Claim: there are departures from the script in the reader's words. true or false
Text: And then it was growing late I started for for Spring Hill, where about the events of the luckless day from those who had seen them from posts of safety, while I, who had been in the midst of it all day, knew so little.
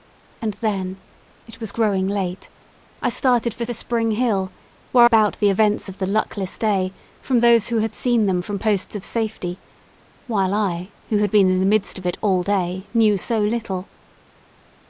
false